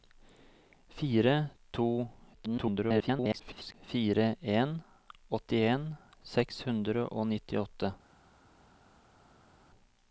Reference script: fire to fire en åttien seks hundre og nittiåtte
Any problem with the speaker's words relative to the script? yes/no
yes